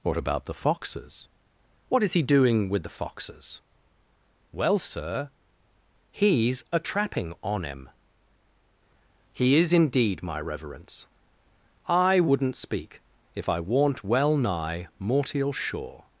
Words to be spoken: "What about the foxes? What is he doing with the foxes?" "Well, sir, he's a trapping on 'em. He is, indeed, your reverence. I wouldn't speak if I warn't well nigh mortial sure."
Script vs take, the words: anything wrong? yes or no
yes